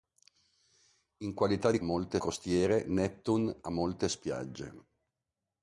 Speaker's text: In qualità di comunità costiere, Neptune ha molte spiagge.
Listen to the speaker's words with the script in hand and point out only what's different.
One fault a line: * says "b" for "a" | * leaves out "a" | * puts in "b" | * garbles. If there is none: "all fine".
* says "molte" for "comunità"